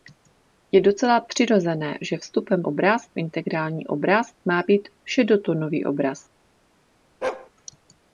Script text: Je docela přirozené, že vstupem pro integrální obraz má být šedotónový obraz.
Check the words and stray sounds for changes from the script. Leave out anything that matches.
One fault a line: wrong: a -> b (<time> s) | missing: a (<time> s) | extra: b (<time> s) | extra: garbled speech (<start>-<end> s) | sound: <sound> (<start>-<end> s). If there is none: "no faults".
wrong: pro -> obraz (2.6 s)
sound: bark (7.2-7.5 s)